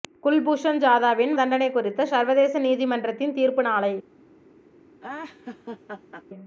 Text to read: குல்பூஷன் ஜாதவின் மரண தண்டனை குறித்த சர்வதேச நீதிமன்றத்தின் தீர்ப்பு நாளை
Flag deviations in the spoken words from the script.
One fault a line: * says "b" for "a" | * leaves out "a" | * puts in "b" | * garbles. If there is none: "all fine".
* leaves out "மரண"